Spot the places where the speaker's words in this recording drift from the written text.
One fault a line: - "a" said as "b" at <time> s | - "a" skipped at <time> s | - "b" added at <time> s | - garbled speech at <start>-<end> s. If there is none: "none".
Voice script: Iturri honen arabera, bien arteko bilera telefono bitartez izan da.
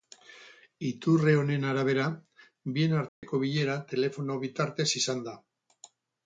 none